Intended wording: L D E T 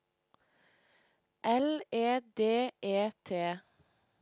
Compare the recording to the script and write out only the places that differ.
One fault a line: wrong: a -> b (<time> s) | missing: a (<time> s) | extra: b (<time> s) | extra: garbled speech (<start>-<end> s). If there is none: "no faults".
extra: E (1.9 s)